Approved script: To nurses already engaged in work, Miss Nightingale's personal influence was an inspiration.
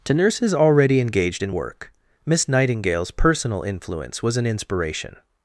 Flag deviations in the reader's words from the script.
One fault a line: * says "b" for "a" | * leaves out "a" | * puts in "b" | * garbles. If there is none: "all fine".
all fine